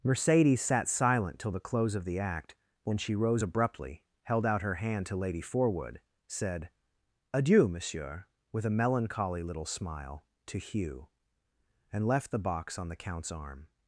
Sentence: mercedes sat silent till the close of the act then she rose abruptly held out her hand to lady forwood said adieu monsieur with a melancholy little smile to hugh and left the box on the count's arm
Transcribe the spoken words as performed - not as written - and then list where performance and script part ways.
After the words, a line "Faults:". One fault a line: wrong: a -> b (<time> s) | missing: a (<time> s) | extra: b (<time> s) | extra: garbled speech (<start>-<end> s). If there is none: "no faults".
mercedes sat silent till the close of the act when she rose abruptly held out her hand to lady forwood said adieu monsieur with a melancholy little smile to hugh and left the box on the count's arm
Faults:
wrong: then -> when (2.8 s)